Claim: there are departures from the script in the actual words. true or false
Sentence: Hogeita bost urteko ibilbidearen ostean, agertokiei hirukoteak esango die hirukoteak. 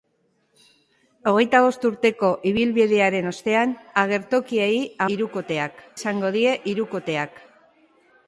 false